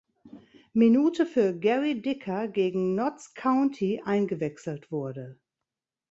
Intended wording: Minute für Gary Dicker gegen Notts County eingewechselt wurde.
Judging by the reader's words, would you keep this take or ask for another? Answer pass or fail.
pass